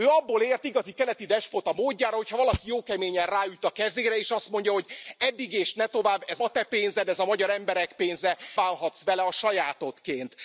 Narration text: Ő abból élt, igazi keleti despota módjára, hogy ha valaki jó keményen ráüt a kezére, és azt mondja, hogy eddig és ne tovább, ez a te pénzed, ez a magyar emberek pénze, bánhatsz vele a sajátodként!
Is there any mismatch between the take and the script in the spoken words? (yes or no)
no